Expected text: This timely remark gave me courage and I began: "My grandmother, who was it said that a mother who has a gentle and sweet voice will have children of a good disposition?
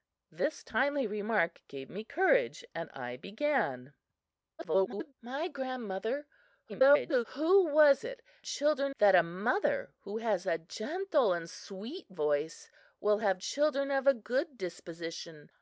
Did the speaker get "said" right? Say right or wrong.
wrong